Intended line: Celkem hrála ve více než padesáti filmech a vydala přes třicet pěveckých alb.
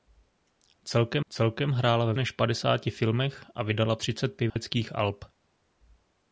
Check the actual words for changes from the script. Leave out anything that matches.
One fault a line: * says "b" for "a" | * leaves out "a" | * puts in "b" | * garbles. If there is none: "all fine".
* puts in "celkem"
* leaves out "více"
* leaves out "přes"